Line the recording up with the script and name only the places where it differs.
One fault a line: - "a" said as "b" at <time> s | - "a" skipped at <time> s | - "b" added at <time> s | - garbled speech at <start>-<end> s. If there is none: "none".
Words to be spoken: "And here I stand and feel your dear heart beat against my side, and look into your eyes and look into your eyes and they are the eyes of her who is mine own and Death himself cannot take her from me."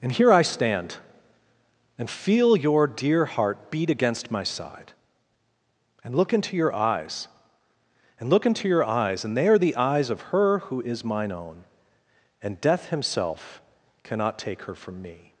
none